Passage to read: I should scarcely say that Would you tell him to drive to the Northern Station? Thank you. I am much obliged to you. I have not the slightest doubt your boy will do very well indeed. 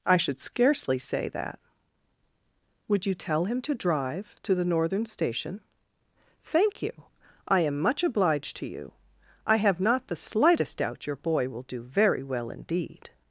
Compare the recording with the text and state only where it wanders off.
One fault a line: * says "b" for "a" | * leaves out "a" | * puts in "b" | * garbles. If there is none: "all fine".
all fine